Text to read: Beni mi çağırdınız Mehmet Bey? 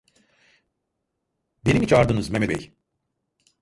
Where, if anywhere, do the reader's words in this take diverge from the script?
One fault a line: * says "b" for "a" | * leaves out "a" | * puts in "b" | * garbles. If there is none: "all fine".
all fine